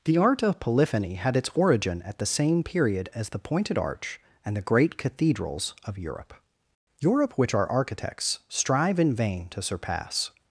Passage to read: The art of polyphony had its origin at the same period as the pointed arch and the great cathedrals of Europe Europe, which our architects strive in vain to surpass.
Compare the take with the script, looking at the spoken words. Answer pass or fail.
pass